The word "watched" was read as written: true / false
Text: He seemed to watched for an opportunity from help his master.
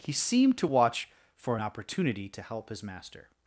false